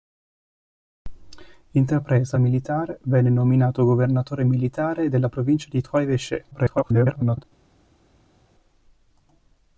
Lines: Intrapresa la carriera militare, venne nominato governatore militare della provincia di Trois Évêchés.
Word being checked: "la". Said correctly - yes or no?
no